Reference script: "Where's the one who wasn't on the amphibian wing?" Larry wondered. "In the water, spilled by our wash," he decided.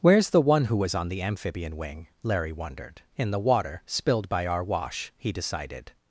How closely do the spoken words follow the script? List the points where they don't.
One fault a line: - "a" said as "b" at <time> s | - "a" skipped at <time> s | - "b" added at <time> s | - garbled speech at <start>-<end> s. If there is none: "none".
- "wasn't" said as "was" at 0.8 s